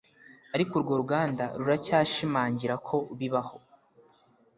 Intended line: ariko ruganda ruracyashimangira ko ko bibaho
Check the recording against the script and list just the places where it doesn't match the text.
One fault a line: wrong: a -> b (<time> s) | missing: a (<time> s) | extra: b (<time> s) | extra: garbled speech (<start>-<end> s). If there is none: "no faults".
extra: urwo (0.8 s)
missing: ko (3.0 s)